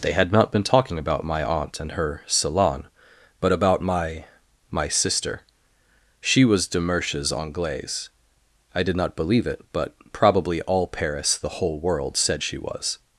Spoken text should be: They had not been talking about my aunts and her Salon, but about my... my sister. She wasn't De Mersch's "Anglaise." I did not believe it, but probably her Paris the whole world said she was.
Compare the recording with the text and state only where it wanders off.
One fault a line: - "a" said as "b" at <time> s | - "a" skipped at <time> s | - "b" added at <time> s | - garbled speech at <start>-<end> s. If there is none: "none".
- "aunts" said as "aunt" at 1.4 s
- "wasn't" said as "was" at 6.5 s
- "her" said as "all" at 10.6 s